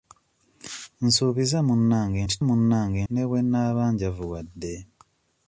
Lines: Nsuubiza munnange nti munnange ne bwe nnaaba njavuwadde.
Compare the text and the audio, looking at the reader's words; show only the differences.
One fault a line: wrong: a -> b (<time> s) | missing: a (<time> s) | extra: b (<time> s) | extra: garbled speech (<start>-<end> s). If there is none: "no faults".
no faults